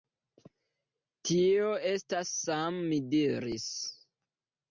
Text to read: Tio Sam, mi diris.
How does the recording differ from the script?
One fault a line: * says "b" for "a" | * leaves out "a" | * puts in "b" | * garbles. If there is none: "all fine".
* puts in "estas"